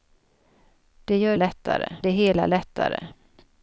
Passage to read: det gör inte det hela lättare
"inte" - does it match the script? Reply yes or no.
no